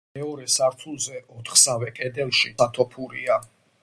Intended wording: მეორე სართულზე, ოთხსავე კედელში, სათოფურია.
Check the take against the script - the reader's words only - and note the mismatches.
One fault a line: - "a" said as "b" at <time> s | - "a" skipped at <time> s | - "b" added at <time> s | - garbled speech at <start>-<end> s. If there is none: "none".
none